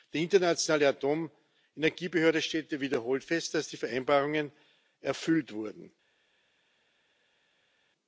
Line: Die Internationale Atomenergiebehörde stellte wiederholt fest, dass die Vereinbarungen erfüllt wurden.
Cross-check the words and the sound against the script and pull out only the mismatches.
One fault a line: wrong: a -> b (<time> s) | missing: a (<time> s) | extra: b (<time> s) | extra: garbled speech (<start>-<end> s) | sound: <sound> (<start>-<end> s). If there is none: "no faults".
no faults